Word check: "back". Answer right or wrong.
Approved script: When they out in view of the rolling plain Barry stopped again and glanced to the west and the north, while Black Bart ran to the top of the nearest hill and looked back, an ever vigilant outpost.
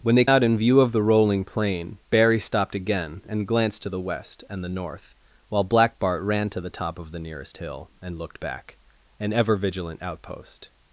right